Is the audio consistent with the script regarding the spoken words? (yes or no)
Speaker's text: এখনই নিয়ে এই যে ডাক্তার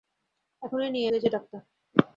yes